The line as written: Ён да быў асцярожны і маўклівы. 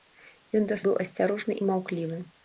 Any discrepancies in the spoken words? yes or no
no